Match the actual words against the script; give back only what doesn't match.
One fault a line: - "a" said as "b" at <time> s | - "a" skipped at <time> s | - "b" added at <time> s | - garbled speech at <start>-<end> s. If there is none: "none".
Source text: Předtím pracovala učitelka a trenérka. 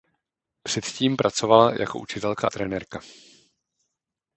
- "jako" added at 1.8 s